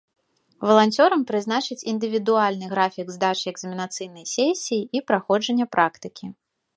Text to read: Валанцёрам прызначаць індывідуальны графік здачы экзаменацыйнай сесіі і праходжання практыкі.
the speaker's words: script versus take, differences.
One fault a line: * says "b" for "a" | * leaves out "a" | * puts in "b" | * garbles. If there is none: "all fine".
all fine